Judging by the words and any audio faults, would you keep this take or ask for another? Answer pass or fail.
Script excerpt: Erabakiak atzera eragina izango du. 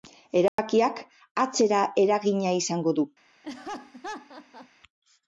fail